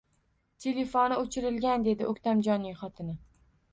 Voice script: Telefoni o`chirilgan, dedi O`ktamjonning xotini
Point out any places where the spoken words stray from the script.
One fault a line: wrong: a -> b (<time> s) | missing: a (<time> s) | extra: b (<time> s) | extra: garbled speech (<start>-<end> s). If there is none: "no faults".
no faults